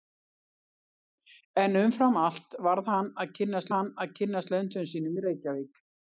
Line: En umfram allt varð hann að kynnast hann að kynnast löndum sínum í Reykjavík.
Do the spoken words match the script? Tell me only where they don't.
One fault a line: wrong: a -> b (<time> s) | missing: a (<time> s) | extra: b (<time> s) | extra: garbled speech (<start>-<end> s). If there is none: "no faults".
no faults